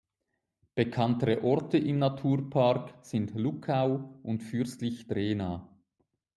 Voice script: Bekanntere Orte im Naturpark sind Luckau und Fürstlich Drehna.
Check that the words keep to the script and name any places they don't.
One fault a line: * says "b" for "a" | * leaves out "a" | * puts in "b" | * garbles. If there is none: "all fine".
all fine